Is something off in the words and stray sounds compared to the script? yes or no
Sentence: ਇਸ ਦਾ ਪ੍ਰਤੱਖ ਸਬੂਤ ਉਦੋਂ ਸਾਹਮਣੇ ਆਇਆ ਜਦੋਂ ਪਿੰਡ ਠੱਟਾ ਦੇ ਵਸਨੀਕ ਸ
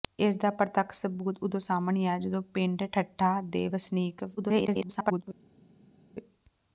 yes